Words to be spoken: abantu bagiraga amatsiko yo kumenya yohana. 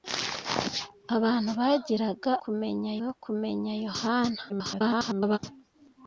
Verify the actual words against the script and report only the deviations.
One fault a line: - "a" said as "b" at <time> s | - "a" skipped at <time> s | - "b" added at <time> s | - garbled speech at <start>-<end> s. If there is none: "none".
- "amatsiko" said as "kumenya" at 2.4 s
- garbled speech at 4.5-5.4 s